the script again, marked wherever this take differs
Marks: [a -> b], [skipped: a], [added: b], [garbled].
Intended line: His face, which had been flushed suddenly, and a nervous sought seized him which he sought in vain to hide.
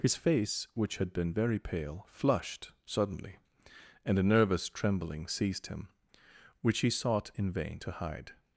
His face, which had been [added: very pale] flushed suddenly, and a nervous [sought -> trembling] seized him which he sought in vain to hide.